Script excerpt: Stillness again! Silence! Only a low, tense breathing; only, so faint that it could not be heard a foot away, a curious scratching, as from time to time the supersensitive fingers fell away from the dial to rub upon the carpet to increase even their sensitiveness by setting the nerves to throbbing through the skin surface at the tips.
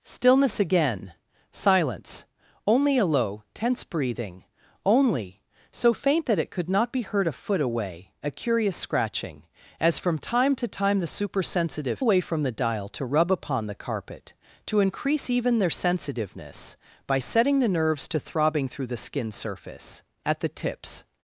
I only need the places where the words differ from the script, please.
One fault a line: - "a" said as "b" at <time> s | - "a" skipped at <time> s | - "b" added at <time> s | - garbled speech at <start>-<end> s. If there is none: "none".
- "fingers fell" skipped at 12.0 s